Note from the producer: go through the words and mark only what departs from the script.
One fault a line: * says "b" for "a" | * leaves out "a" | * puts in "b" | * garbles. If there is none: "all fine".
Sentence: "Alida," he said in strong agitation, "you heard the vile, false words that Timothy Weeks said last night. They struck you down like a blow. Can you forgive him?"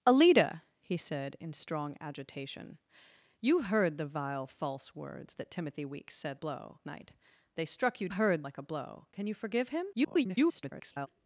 * says "blow" for "last"
* says "heard" for "down"
* garbles